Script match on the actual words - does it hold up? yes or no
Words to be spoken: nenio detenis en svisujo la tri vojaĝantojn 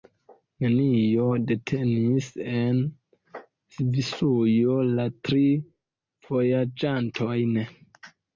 yes